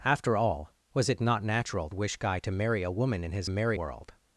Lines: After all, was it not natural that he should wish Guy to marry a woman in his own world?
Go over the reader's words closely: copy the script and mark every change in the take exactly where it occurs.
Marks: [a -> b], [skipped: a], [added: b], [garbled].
After all, was it not natural [skipped: that he should] wish Guy to marry a woman in his [own -> marry] world?